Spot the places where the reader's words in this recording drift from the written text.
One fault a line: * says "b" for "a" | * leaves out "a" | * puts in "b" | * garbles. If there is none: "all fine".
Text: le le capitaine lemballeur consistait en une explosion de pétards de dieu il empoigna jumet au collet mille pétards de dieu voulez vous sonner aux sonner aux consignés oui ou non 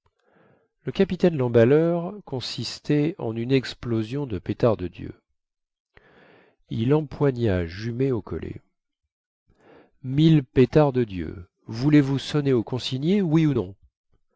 * leaves out "le"
* leaves out "sonner aux"